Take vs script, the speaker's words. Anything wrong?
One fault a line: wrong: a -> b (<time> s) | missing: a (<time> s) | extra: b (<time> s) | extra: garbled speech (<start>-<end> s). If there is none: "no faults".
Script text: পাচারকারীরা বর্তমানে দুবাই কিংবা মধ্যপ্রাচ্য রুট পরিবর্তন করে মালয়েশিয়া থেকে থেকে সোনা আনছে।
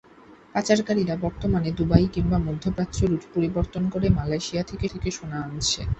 no faults